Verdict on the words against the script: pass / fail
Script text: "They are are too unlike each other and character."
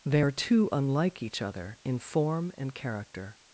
fail